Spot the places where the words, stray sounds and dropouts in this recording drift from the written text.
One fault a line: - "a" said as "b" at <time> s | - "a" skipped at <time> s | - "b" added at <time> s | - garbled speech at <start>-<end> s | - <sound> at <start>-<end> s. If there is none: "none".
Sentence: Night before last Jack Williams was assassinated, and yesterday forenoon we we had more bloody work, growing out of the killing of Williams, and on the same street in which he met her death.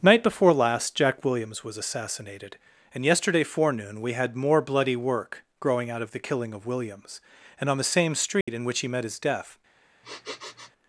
- "we" skipped at 4.1 s
- dropout at 8.4-8.5 s
- "her" said as "his" at 9.0 s
- sniff at 10.0-10.7 s